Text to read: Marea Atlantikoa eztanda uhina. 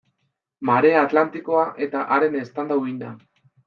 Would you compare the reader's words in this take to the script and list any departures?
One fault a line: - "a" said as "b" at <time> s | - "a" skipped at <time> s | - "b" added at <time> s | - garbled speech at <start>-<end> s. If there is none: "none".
- "eta haren" added at 1.9 s